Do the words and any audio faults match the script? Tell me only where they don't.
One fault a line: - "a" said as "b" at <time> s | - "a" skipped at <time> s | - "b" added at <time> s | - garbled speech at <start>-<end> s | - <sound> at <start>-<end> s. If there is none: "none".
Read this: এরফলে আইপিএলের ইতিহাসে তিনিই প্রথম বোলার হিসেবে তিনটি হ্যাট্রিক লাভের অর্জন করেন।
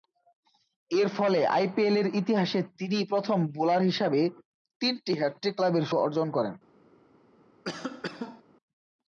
- cough at 7.6-8.4 s